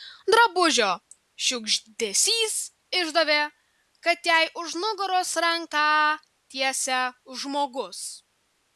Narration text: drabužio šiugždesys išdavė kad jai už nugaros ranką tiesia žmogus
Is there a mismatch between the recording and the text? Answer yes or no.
no